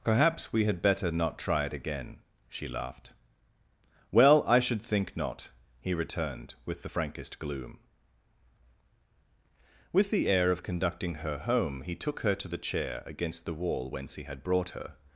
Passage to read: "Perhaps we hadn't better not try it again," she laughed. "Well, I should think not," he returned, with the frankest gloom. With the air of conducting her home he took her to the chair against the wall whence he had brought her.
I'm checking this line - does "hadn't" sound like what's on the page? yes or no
no